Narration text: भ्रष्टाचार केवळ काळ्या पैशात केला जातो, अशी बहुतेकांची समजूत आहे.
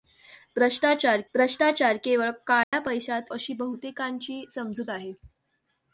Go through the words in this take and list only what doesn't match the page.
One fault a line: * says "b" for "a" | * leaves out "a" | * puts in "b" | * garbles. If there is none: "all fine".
* puts in "भ्रष्टाचार"
* leaves out "केला जातो"